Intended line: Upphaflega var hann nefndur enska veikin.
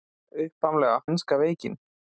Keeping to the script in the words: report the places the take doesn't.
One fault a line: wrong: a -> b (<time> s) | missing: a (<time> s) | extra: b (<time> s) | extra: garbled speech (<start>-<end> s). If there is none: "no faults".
missing: var hann nefndur (0.9 s)